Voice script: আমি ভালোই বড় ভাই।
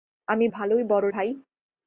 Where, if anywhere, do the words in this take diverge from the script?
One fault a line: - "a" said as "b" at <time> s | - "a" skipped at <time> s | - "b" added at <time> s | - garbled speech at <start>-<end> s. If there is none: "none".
none